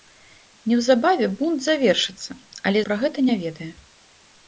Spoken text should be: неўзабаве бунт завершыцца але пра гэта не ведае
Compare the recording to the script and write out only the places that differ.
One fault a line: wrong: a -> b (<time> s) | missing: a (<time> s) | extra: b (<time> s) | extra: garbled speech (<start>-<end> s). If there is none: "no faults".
no faults